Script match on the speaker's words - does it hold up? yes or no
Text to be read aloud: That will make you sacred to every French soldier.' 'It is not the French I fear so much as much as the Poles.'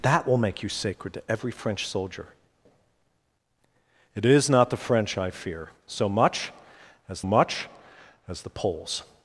yes